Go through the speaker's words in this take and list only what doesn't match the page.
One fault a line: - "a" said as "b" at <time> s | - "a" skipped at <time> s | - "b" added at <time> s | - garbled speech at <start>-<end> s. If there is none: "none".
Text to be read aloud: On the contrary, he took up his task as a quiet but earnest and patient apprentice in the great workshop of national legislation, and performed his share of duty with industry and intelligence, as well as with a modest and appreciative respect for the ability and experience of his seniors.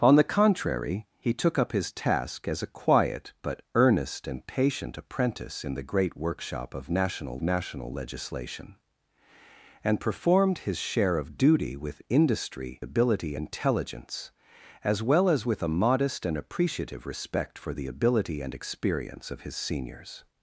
- "national" added at 7.4 s
- "and" said as "ability" at 12.8 s